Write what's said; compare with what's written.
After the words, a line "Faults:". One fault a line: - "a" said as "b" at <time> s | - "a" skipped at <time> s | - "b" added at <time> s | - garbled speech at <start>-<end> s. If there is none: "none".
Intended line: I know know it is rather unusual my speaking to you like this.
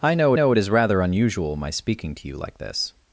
I know know it is rather unusual my speaking to you like this.
Faults:
none